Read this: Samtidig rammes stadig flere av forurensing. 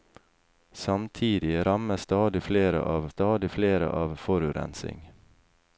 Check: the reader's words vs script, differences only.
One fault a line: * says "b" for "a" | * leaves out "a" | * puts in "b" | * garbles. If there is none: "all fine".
* puts in "stadig flere av"